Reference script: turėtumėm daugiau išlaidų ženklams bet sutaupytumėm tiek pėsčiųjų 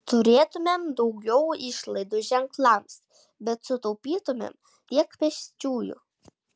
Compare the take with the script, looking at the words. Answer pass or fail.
pass